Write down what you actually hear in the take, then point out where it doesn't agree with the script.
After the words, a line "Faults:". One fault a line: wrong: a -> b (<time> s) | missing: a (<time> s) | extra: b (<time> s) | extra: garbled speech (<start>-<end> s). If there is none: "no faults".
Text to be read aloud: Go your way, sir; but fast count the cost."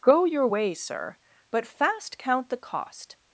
Go your way, sir; but fast count the cost."
Faults:
no faults